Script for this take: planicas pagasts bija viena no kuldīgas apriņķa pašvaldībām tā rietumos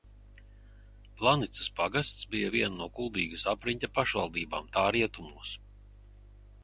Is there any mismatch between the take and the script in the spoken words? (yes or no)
no